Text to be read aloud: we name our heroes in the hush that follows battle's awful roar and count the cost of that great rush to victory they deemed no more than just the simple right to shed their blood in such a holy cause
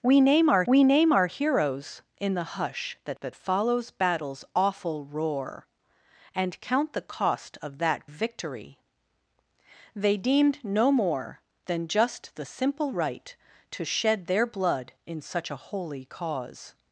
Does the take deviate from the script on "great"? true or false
true